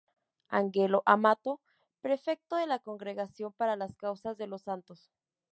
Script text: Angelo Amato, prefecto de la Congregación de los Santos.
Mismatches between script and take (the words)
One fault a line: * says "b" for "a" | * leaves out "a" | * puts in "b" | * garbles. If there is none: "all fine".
* puts in "para las Causas"